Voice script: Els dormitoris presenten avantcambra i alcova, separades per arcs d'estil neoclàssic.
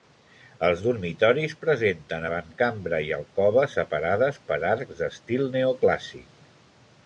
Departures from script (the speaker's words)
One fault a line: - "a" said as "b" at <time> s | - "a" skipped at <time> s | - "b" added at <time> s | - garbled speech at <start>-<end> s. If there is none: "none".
none